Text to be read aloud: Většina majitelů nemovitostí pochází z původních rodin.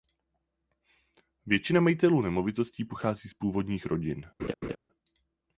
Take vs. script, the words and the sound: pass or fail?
fail